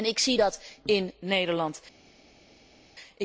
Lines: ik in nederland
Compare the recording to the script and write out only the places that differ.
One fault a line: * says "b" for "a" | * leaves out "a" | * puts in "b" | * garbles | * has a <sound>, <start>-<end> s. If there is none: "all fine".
* puts in "zie dat"